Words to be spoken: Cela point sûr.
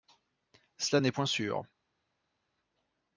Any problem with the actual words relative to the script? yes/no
yes